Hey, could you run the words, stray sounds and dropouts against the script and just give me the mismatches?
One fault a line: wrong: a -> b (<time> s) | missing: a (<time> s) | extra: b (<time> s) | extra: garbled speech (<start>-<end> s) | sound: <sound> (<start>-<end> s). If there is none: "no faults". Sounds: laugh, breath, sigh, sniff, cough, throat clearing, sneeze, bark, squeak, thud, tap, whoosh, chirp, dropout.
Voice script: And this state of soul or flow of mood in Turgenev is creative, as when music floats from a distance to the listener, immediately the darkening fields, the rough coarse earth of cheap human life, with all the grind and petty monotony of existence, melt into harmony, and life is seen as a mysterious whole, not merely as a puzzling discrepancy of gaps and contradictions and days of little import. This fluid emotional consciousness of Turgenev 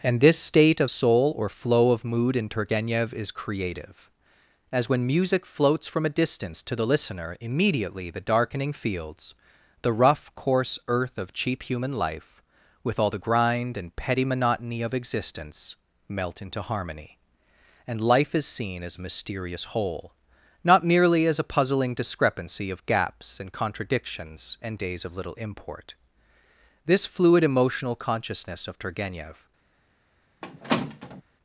sound: squeak (30.4-31.2 s)